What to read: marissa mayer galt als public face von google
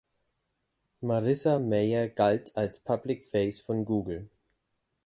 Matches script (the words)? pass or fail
pass